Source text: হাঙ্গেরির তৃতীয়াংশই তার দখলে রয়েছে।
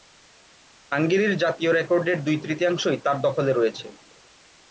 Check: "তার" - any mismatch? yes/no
no